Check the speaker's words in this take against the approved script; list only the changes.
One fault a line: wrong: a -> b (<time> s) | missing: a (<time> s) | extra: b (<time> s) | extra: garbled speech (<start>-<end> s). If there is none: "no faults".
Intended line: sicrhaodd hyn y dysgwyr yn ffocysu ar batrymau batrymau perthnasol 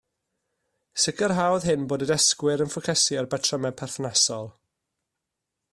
extra: bod (1.9 s)
missing: batrymau (3.8 s)